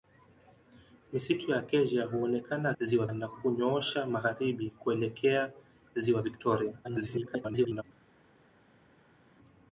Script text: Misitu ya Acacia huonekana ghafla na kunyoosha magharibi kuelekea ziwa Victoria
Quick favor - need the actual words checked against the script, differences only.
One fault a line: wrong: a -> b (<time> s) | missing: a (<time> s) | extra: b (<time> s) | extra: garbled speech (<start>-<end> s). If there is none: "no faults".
wrong: ghafla -> ziwa (2.8 s)
extra: garbled speech (6.8-7.8 s)